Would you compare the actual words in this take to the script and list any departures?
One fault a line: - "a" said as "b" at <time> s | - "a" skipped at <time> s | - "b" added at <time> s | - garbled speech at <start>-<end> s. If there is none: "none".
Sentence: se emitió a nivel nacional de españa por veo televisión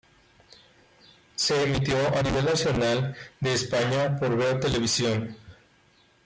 none